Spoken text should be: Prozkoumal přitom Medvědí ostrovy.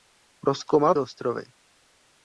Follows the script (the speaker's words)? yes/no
no